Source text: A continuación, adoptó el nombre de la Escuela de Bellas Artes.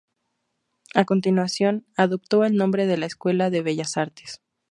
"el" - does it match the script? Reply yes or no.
yes